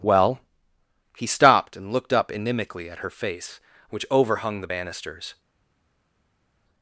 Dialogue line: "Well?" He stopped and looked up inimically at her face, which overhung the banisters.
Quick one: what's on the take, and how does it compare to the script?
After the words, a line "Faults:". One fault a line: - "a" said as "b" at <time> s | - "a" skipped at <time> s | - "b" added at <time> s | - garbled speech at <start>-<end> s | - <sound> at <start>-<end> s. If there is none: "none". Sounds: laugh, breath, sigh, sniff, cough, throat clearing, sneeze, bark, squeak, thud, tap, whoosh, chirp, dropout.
"Well?" He stopped and looked up inimically at her face, which overhung the banisters.
Faults:
none